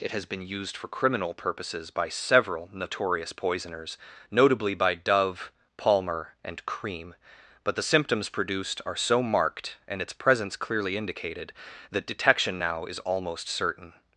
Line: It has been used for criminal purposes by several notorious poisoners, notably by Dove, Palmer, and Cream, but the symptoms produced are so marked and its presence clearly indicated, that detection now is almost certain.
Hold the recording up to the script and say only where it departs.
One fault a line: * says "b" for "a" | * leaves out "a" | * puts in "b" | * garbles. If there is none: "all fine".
all fine